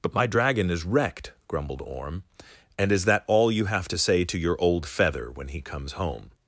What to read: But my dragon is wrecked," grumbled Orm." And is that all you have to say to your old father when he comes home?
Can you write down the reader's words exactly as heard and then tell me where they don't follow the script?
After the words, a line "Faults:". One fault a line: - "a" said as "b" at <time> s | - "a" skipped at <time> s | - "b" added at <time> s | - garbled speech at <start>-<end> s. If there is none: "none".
But my dragon is wrecked," grumbled Orm." And is that all you have to say to your old feather when he comes home?
Faults:
- "father" said as "feather" at 4.8 s